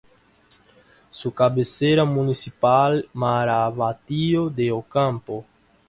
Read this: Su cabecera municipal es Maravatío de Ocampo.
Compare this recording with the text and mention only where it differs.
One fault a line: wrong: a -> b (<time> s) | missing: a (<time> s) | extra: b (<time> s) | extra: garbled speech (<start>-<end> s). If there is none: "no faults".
missing: es (3.1 s)